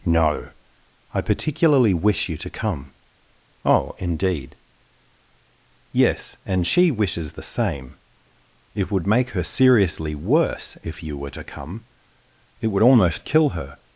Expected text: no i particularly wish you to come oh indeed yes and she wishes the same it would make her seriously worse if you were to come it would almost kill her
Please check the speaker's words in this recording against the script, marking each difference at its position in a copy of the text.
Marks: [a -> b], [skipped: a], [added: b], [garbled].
no i particularly wish you to come oh indeed yes and she wishes the same it would make her seriously worse if you were to come it would almost kill her